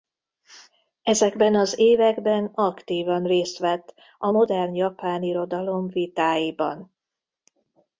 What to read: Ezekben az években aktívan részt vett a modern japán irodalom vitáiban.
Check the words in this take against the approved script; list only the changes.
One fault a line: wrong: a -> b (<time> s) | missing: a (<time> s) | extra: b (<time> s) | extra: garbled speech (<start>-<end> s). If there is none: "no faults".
no faults